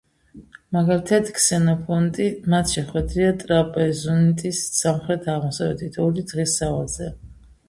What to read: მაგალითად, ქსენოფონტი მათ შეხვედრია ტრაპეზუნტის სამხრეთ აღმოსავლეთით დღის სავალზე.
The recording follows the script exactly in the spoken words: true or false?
false